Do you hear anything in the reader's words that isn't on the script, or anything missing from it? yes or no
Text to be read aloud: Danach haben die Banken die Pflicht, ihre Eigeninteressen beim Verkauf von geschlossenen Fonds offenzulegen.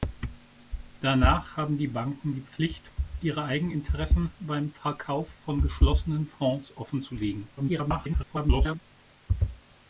yes